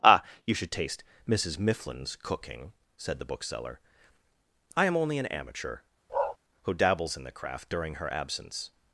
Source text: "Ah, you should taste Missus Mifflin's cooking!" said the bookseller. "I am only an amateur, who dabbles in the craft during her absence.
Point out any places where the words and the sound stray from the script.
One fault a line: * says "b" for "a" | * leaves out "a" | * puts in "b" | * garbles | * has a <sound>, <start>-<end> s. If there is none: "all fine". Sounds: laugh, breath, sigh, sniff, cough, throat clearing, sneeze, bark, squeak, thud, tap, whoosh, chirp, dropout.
* has a bark, 6.1-6.4 s